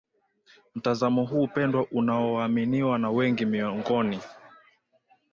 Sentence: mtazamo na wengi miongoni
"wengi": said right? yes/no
yes